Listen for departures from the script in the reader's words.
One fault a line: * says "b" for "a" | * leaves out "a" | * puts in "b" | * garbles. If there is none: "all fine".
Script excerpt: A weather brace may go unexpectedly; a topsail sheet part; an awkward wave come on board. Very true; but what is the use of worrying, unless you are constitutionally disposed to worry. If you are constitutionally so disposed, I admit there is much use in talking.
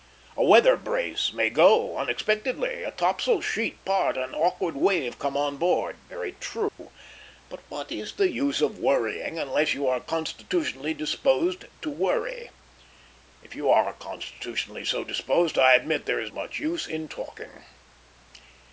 all fine